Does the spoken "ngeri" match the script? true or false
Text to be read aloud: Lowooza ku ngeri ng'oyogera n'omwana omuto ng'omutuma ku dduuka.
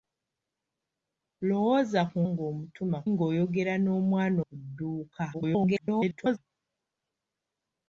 false